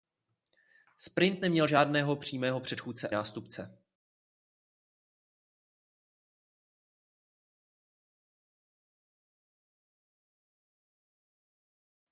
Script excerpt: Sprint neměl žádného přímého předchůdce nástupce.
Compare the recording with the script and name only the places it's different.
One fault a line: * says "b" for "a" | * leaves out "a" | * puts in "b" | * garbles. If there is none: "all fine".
all fine